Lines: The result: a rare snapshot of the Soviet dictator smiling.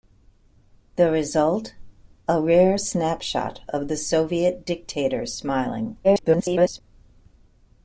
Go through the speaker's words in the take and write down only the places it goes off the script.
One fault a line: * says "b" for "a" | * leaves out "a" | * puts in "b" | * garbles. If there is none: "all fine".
* garbles